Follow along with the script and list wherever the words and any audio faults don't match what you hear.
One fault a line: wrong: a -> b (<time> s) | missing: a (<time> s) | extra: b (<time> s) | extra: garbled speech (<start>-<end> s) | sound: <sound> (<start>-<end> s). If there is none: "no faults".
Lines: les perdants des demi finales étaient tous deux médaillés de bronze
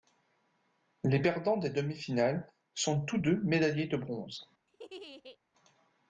wrong: étaient -> sont (2.7 s)
sound: laugh (4.7-5.4 s)